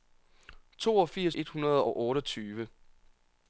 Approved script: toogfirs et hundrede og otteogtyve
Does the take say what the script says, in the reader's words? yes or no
yes